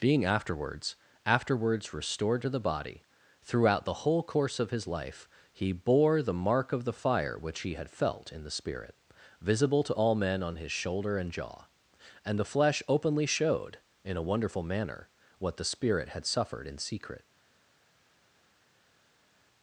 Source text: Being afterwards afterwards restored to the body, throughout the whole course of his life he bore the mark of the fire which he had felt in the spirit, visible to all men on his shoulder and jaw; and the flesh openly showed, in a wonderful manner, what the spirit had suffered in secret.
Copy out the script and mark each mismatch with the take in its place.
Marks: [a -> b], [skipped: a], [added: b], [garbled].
Being afterwards afterwards restored to the body, throughout the whole course of his life he bore the mark of the fire which he had felt in the spirit, visible to all men on his shoulder and jaw; and the flesh openly showed, in a wonderful manner, what the spirit had suffered in secret.